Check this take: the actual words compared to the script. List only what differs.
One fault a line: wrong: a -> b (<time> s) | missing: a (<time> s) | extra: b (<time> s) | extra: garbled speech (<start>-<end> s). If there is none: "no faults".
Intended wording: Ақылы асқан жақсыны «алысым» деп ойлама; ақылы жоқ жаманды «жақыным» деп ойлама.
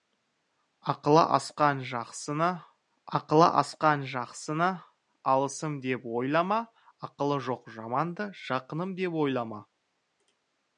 extra: ақылы асқан жақсыны (3.2 s)